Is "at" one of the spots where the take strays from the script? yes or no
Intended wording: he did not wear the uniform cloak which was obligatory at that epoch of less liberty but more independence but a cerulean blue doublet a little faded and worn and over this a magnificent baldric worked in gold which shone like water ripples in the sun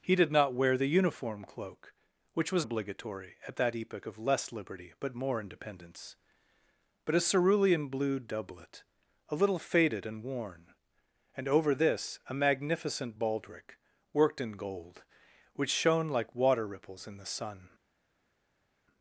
no